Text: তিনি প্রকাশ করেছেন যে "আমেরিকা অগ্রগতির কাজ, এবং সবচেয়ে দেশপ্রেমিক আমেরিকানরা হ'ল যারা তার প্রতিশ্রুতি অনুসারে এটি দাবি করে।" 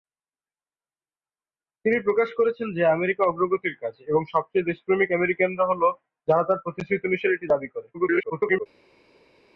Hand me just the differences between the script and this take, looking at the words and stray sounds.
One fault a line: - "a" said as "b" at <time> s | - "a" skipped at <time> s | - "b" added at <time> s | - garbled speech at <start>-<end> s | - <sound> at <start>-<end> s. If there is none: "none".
- garbled speech at 7.9-8.7 s